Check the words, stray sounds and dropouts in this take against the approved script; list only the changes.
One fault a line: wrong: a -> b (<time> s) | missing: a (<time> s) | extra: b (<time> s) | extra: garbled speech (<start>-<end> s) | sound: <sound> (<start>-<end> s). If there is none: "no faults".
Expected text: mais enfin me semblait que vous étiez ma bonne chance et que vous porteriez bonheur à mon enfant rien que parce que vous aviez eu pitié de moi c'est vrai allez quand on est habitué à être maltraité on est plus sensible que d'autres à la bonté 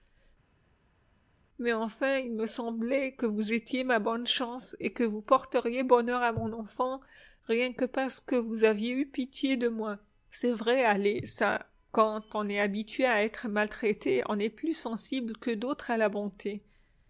extra: il (2.2 s)
extra: ça (11.2 s)